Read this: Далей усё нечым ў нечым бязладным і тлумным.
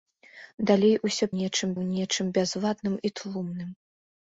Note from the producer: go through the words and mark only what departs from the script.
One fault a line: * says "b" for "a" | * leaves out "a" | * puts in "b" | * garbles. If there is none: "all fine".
all fine